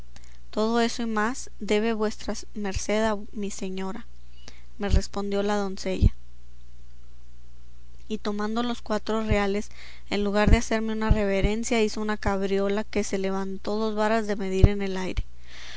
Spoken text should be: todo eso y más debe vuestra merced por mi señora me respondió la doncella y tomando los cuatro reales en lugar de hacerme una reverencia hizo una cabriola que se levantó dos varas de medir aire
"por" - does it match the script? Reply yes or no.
no